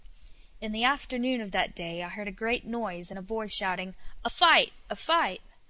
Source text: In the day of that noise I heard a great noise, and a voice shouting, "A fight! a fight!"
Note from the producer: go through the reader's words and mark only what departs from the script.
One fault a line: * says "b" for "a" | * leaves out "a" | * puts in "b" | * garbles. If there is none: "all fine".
* says "afternoon" for "day"
* says "day" for "noise"